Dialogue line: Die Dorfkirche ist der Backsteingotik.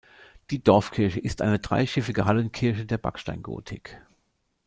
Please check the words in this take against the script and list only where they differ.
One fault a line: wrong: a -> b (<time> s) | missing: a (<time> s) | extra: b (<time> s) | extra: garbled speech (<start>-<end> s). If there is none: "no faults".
extra: eine dreischiffige Hallenkirche (1.4 s)